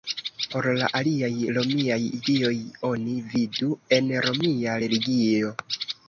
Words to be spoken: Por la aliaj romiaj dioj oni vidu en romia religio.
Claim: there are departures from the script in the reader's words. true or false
false